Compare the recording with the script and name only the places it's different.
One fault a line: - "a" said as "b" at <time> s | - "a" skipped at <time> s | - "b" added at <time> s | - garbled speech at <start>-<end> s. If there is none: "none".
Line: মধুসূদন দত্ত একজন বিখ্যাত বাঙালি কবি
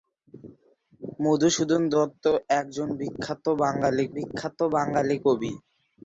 - "বিখ্যাত বাঙালি" added at 4.2 s